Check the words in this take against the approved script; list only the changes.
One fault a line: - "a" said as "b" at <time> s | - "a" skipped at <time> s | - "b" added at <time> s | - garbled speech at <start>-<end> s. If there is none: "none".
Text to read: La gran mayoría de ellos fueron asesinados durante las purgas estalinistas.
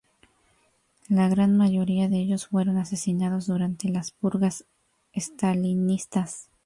none